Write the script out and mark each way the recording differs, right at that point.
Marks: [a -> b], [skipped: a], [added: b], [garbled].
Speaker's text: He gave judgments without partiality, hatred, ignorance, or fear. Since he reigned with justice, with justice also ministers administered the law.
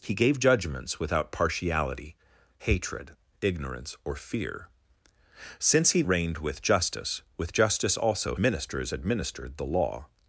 He gave judgments without partiality, hatred, ignorance, or fear. Since he reigned with justice, with justice also ministers administered the law.